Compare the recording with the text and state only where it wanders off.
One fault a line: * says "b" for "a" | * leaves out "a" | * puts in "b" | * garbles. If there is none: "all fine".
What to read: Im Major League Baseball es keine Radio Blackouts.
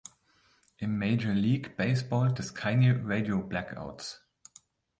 all fine